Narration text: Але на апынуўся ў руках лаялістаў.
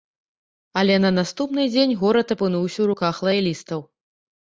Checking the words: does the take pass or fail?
fail